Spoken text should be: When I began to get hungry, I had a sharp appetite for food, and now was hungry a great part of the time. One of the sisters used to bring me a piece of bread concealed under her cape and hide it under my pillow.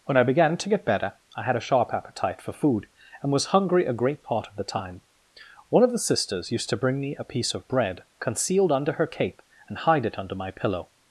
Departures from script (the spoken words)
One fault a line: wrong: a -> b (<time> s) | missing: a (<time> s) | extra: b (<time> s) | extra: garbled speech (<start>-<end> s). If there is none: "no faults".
wrong: hungry -> better (0.8 s)
missing: now (3.3 s)